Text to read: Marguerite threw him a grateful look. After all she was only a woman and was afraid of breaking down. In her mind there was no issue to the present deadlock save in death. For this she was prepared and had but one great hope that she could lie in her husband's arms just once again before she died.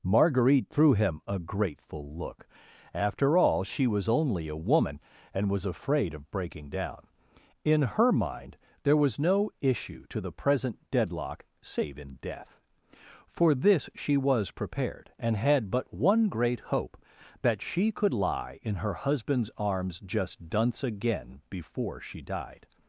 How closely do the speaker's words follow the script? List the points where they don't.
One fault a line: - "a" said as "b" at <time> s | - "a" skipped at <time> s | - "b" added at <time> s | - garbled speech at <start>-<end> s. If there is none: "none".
- "once" said as "dunce" at 20.5 s